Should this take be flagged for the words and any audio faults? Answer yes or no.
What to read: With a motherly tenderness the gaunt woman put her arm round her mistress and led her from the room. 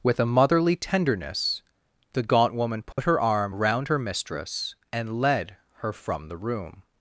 yes